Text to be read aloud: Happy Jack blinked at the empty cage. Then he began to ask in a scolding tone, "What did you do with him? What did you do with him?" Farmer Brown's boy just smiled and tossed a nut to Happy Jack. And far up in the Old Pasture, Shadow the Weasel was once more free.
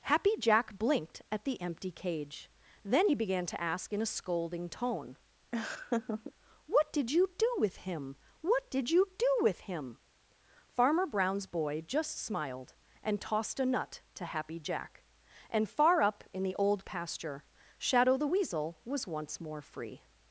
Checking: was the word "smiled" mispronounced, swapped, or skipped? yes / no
no